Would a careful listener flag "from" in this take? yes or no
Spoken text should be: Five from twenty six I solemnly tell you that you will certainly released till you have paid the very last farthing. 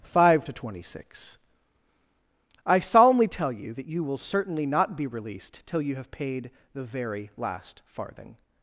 yes